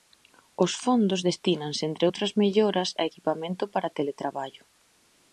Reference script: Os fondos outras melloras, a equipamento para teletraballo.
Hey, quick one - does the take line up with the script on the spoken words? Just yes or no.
no